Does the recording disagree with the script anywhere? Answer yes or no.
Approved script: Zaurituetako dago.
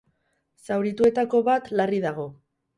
yes